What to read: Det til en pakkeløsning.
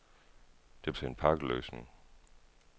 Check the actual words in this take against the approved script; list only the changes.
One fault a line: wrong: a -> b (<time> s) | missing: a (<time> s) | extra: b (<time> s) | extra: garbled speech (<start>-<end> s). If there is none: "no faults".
no faults